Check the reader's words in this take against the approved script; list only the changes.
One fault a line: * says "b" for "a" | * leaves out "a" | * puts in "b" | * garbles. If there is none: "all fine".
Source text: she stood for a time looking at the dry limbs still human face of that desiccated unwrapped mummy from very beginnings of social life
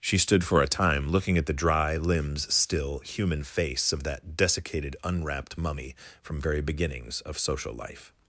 all fine